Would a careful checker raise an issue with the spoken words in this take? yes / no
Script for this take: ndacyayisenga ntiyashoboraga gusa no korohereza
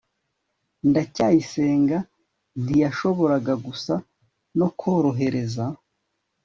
no